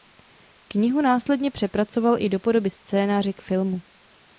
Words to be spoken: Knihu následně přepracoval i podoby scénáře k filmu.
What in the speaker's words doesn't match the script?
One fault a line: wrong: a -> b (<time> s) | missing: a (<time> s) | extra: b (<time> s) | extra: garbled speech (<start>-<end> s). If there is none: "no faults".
extra: do (2.3 s)